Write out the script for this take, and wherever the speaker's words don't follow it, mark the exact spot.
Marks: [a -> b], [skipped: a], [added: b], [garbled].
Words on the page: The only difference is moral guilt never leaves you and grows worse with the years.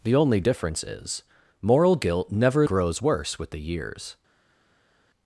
The only difference is moral guilt never [skipped: leaves you and] grows worse with the years.